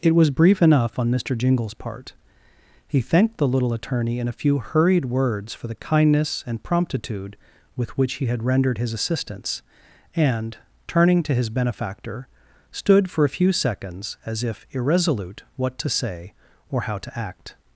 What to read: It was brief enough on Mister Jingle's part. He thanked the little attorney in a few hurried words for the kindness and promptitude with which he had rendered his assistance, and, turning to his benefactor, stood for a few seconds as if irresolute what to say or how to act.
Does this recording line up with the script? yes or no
yes